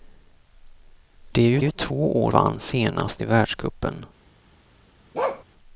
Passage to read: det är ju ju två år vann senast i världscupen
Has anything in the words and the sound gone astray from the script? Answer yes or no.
yes